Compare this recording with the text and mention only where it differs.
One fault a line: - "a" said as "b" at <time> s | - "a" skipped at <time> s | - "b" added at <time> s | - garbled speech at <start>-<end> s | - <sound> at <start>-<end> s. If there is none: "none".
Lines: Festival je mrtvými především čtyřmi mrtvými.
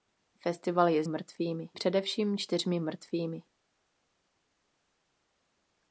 none